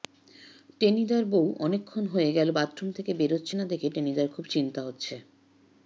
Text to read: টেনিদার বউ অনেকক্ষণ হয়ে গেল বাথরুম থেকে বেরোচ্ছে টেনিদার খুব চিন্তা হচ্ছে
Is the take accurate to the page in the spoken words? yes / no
no